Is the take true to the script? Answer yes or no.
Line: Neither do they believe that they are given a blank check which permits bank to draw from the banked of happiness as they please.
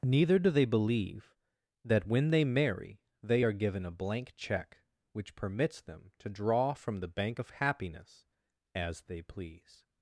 no